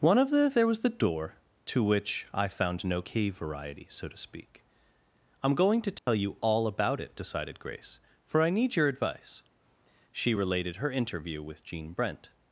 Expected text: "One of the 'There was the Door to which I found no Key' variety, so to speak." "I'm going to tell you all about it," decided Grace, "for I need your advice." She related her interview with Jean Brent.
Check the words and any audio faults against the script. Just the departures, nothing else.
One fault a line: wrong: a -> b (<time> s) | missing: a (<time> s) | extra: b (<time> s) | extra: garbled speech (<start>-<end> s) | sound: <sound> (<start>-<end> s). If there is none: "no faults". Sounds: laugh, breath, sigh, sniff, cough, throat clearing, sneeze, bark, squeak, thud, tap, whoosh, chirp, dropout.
sound: dropout (6.0-6.1 s)